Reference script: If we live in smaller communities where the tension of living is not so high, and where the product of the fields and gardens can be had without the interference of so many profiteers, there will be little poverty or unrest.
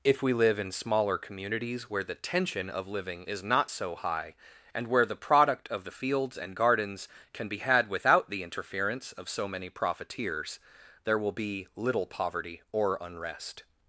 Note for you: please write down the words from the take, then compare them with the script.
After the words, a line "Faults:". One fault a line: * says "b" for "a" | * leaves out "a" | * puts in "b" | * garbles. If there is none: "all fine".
If we live in smaller communities where the tension of living is not so high, and where the product of the fields and gardens can be had without the interference of so many profiteers, there will be little poverty or unrest.
Faults:
all fine